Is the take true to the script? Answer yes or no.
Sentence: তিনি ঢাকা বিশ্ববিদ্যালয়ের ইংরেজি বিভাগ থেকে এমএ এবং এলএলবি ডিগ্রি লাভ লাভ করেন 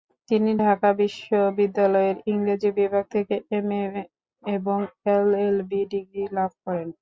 no